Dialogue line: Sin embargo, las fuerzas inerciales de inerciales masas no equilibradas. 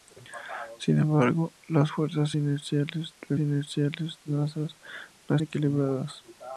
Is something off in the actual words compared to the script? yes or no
no